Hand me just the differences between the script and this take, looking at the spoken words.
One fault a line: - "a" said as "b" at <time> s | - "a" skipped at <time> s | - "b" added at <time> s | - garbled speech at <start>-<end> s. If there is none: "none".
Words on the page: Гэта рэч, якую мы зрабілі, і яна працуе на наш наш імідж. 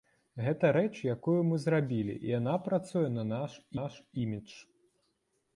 none